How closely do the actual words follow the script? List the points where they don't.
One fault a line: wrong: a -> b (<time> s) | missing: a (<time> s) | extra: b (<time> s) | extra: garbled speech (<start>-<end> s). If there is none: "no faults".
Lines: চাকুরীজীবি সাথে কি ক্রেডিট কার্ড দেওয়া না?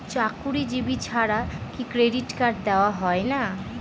wrong: সাথে -> ছাড়া (1.0 s)
extra: হয় (2.9 s)